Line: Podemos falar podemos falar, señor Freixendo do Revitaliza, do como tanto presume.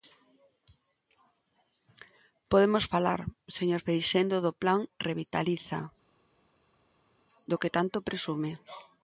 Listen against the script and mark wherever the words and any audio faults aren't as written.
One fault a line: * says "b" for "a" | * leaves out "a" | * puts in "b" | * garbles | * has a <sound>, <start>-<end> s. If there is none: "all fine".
* leaves out "podemos falar"
* puts in "Plan"
* says "que" for "como"